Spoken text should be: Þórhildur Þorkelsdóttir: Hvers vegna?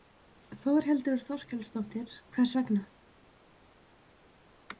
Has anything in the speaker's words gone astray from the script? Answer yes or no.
no